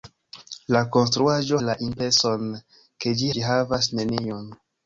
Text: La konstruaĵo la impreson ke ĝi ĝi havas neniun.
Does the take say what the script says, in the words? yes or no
yes